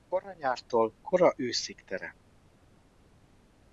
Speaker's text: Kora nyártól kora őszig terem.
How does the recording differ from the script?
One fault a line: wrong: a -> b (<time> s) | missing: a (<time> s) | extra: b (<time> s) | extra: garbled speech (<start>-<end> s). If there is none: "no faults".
no faults